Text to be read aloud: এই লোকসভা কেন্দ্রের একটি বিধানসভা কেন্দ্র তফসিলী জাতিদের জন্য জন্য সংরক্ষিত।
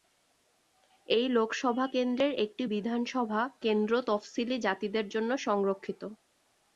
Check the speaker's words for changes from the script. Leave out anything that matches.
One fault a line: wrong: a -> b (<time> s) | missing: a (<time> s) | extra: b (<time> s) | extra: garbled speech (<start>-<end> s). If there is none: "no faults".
missing: জন্য (5.3 s)